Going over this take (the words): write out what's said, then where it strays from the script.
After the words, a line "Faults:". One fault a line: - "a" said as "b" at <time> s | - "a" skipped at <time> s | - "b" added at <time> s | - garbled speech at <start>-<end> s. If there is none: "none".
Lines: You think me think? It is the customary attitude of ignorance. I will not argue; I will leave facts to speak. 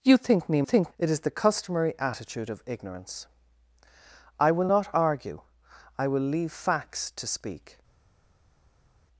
You think me think? It is the customary attitude of ignorance. I will not argue; I will leave facts to speak.
Faults:
none